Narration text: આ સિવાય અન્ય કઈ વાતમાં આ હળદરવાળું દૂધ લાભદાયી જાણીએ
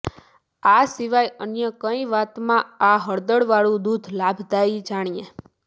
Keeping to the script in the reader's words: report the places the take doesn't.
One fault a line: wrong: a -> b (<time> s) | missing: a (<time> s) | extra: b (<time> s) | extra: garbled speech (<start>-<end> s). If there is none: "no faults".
no faults